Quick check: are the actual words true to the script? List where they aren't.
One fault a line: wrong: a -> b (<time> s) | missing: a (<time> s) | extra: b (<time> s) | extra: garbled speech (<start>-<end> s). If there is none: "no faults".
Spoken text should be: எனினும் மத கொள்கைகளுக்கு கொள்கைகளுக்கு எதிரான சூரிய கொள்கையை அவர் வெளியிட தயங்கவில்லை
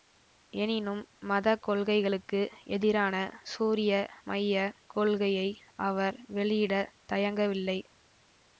missing: கொள்கைகளுக்கு (2.4 s)
extra: மைய (4.2 s)